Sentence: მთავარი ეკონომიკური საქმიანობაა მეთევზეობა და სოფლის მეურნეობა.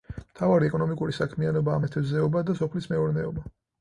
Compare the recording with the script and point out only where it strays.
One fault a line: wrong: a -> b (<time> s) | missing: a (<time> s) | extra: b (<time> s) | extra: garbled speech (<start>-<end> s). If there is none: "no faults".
no faults